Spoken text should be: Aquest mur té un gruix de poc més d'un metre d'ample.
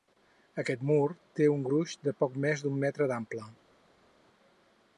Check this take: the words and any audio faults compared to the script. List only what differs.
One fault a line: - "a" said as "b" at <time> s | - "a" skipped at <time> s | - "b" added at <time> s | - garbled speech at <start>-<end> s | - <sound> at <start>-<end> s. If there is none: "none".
none